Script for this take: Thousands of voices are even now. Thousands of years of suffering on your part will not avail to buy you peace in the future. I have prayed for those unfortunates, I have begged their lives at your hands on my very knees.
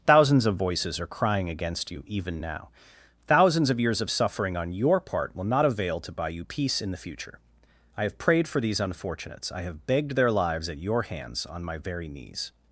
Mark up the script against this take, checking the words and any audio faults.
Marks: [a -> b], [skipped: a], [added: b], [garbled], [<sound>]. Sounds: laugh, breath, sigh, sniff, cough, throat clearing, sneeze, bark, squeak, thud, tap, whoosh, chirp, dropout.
Thousands of voices are [added: crying against you] even now. Thousands of years of suffering on your part will not avail to buy you peace in the future. I have prayed for [those -> these] unfortunates, I have begged their lives at your hands on my very knees.